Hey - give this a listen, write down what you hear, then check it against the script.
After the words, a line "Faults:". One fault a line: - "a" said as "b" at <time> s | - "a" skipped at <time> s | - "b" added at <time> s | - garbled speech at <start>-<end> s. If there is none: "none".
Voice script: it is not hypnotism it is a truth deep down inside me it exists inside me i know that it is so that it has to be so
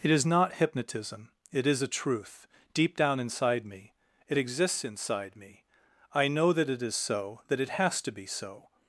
it is not hypnotism it is a truth deep down inside me it exists inside me i know that it is so that it has to be so
Faults:
none